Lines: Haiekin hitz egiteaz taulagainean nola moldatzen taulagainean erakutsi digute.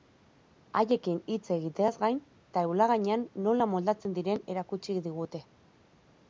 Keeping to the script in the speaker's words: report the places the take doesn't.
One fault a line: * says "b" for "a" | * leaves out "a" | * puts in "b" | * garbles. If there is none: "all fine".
* puts in "gain"
* says "diren" for "taulagainean"